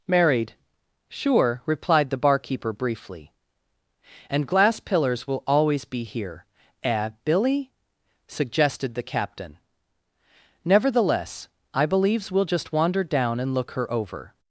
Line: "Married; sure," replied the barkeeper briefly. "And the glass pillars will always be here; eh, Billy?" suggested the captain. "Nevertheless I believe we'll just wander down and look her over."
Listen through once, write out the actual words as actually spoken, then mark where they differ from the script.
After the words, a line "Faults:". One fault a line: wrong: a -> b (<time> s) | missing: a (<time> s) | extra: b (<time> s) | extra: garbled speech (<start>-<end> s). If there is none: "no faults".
"Married; sure," replied the barkeeper briefly. "And glass pillars will always be here; eh, Billy?" suggested the captain. "Nevertheless I believes we'll just wander down and look her over."
Faults:
missing: the (4.5 s)
wrong: believe -> believes (11.8 s)